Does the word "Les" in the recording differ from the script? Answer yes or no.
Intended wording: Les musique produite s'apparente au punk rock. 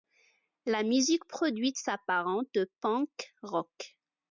yes